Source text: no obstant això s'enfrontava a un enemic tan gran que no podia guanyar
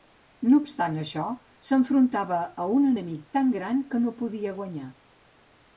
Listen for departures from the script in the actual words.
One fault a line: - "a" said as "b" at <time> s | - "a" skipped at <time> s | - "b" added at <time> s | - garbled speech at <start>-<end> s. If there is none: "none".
none